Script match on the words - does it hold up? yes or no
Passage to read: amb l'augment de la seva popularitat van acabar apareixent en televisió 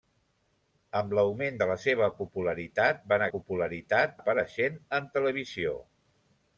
no